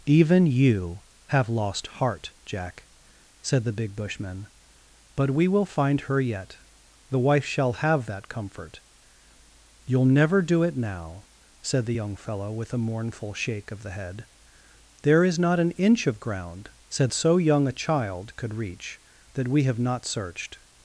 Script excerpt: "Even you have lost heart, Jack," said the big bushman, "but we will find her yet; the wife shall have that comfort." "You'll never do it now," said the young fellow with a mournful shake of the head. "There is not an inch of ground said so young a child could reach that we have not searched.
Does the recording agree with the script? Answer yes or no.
yes